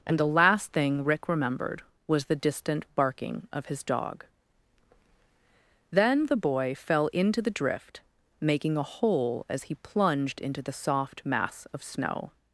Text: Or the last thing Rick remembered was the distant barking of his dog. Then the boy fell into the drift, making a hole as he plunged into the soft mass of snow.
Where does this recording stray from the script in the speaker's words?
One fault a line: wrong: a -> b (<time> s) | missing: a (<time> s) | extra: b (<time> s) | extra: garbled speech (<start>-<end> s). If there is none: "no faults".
wrong: Or -> And (0.1 s)